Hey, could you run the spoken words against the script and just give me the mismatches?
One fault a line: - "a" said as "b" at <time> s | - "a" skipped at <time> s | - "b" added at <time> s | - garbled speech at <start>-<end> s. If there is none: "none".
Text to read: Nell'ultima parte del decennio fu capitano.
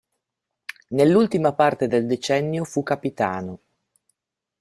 none